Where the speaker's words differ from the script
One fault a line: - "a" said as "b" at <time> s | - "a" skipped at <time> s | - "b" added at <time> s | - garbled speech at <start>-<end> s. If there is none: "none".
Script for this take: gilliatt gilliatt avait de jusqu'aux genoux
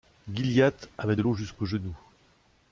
- "gilliatt" skipped at 0.9 s
- "l'eau" added at 1.2 s